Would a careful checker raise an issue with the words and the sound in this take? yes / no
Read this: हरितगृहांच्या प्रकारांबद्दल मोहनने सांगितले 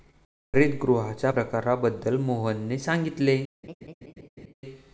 yes